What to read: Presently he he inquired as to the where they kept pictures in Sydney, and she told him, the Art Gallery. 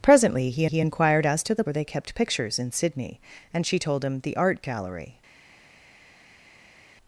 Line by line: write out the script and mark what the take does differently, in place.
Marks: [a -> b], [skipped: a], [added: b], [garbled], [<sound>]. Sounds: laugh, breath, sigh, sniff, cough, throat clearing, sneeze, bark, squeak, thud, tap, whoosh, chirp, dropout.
Presently he he inquired as to the where they kept pictures in Sydney, and she told him, the Art Gallery.